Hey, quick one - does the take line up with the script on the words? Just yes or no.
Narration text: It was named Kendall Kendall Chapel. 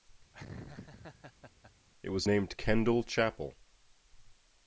no